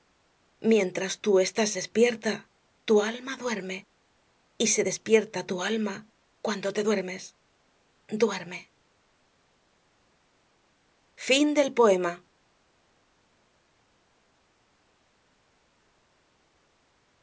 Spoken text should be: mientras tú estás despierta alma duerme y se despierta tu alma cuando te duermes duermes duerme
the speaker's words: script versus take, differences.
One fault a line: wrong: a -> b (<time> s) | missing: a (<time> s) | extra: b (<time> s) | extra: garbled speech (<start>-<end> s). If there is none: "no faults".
extra: tu (2.8 s)
missing: duermes (7.4 s)